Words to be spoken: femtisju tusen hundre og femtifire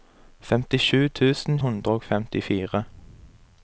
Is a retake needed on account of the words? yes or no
no